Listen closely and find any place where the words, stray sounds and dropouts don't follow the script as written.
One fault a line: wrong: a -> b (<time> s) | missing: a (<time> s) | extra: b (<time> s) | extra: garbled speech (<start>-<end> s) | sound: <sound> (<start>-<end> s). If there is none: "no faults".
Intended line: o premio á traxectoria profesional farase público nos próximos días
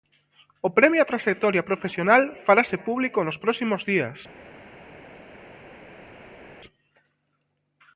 no faults